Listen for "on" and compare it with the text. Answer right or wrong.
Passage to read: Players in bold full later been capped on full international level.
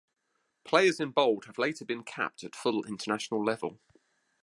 wrong